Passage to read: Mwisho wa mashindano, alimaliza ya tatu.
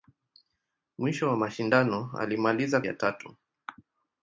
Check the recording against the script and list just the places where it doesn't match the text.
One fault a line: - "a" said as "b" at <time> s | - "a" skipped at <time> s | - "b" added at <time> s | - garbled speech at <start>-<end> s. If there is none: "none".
none